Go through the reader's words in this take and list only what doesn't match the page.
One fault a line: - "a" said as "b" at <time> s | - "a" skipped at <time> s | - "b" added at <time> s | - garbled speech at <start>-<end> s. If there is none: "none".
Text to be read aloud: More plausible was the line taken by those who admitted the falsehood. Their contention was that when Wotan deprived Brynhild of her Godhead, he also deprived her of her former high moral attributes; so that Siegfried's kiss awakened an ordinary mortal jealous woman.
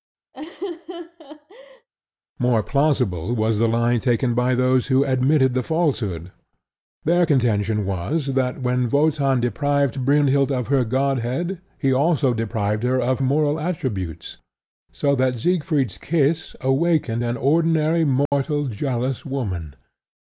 - "her former high" skipped at 13.2 s